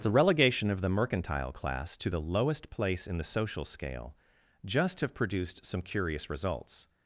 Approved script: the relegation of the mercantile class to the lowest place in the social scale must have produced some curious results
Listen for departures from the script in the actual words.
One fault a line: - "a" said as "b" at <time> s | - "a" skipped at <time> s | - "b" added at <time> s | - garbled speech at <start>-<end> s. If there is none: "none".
- "must" said as "just" at 4.6 s